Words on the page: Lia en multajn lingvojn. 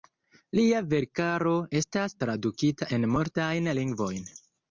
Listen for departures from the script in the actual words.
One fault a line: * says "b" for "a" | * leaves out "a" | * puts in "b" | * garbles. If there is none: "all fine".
* puts in "verkaro estas tradukita"